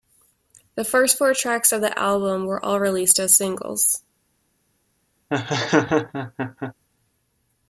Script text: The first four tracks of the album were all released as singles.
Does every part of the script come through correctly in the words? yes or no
yes